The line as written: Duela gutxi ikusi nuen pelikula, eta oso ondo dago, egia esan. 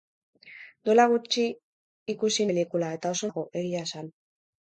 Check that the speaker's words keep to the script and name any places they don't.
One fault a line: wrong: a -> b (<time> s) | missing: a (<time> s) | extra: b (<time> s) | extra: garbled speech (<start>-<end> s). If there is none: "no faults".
missing: nuen (2.5 s)
missing: ondo (3.3 s)